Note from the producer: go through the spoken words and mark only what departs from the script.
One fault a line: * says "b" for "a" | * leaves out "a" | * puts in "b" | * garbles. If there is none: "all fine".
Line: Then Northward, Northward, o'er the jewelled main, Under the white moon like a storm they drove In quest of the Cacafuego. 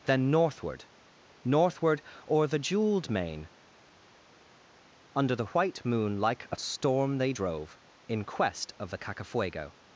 all fine